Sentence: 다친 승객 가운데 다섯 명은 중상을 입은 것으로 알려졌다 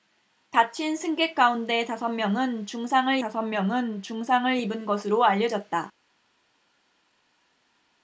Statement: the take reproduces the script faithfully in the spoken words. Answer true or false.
false